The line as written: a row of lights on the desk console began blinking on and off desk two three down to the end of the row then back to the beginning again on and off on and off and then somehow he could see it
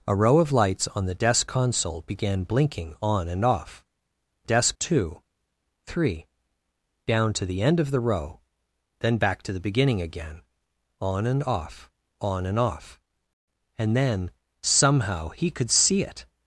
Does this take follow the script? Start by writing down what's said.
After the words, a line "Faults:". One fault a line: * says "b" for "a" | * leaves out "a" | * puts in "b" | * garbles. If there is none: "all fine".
a row of lights on the desk console began blinking on and off desk two three down to the end of the row then back to the beginning again on and off on and off and then somehow he could see it
Faults:
all fine